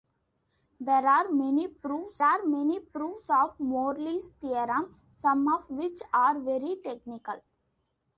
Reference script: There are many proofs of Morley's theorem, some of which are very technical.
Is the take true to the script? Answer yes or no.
no